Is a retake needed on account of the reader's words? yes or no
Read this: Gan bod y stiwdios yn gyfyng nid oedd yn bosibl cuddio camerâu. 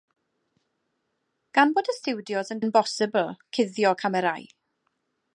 yes